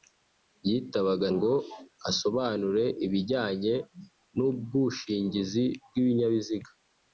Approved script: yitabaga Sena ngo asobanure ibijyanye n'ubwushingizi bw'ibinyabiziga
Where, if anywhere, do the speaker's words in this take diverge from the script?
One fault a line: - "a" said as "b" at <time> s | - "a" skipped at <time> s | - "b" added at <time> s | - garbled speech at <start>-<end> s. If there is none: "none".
- "Sena" skipped at 1.3 s